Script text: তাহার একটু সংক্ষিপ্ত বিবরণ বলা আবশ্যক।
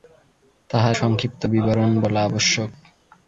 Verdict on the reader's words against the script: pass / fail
fail